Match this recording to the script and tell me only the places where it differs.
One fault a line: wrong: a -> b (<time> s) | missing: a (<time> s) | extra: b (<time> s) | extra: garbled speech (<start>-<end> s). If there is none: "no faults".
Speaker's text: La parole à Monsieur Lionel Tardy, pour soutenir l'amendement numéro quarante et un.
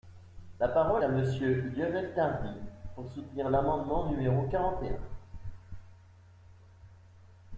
no faults